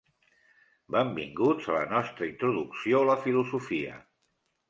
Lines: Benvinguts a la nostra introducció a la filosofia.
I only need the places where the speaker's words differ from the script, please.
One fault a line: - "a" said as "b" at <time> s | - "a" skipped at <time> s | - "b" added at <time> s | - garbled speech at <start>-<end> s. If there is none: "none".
none